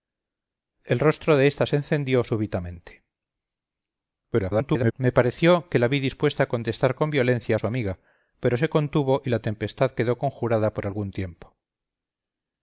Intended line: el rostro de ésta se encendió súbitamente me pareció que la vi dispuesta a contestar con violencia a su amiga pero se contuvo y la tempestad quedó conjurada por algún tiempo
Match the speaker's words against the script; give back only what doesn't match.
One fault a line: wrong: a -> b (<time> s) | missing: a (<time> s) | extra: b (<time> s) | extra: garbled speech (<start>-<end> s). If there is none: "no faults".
extra: garbled speech (4.3-4.9 s)